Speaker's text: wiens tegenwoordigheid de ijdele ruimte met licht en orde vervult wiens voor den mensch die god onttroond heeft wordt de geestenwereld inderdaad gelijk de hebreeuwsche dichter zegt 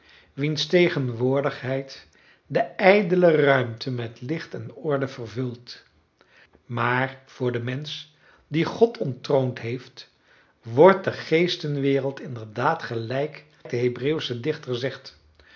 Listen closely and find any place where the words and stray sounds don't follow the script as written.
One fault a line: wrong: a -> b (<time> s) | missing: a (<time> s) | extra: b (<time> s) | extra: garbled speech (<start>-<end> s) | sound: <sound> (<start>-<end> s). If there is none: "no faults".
wrong: wiens -> maar (6.6 s)